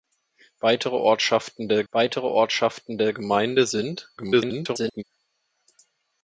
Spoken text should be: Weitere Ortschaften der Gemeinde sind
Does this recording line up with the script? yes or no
no